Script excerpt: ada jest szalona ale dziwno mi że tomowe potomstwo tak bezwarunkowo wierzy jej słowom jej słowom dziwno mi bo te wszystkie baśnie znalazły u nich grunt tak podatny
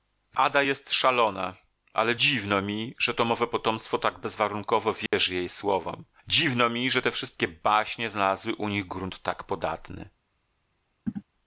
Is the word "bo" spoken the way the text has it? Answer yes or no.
no